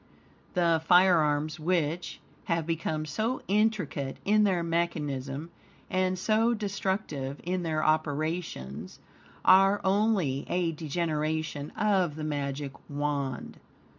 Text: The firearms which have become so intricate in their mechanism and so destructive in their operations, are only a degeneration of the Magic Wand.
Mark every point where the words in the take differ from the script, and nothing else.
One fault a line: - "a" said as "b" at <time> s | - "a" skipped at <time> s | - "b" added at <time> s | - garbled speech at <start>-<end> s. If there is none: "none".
none